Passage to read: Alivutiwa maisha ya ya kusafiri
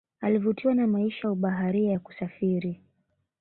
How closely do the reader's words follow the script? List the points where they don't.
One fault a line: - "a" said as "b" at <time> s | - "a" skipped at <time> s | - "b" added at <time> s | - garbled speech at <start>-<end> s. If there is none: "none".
- "na" added at 0.8 s
- "ubaharia" added at 1.3 s